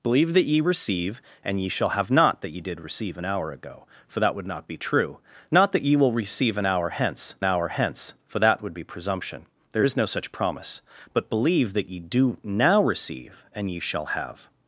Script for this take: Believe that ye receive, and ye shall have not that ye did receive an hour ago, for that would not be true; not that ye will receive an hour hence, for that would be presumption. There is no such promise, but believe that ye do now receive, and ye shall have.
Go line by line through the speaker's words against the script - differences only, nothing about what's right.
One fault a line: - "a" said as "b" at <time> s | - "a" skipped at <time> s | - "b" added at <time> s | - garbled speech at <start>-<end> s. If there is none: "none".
- "hour hence" added at 7.4 s